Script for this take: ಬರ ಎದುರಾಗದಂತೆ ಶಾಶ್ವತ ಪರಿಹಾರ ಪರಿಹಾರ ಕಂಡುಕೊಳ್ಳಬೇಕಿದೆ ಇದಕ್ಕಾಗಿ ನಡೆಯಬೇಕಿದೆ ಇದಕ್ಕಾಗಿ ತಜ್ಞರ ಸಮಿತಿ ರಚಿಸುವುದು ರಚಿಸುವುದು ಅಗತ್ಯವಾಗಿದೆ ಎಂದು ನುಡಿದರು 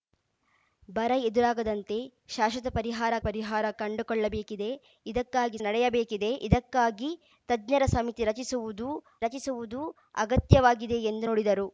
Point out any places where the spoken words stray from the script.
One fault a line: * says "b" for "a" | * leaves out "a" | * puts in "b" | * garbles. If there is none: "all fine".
all fine